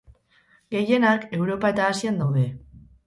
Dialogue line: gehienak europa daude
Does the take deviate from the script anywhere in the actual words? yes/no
yes